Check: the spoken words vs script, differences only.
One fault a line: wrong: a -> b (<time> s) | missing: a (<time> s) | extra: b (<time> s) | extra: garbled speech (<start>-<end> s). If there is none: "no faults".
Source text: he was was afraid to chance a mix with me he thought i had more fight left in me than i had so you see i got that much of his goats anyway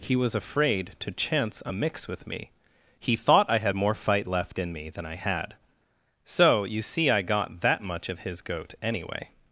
missing: was (0.3 s)
wrong: goats -> goat (8.4 s)